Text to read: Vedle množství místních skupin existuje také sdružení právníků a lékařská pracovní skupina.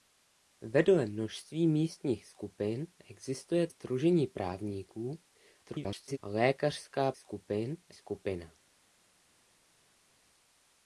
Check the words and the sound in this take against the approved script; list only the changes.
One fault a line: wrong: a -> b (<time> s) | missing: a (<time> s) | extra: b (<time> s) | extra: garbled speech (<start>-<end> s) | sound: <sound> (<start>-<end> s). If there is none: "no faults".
missing: také (3.7 s)
extra: garbled speech (5.6-6.2 s)
wrong: pracovní -> skupin (7.2 s)